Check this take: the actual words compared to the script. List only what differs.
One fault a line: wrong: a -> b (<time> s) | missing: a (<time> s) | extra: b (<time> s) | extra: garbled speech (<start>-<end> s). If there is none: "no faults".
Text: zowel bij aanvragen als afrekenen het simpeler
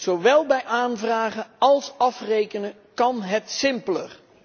extra: kan (2.9 s)